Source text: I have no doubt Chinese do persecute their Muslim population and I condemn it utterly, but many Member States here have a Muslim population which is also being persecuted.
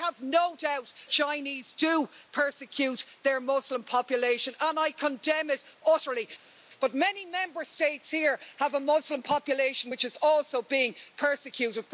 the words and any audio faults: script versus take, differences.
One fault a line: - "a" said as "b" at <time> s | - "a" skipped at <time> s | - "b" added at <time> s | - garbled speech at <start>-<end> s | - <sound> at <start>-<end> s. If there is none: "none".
none